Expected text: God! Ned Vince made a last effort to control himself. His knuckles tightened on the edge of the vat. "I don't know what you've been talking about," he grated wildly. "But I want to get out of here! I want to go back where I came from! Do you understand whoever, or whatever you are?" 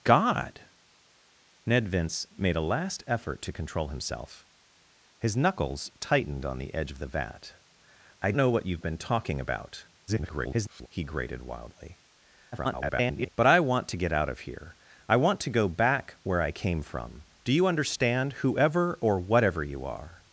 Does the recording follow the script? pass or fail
fail